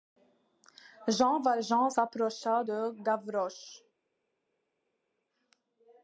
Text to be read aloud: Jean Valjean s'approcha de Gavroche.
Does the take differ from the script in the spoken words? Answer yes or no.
no